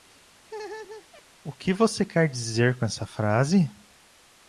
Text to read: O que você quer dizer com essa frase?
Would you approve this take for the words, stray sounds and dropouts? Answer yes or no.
no